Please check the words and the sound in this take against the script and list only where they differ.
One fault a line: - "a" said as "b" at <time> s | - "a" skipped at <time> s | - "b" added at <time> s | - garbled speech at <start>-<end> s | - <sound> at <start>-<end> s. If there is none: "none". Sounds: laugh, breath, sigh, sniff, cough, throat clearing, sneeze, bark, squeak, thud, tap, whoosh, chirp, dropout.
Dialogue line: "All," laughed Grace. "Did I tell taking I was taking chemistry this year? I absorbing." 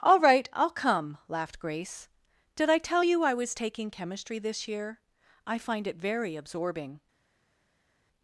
- "right I'll come" added at 0.2 s
- "taking" said as "you" at 3.0 s
- "find it very" added at 5.6 s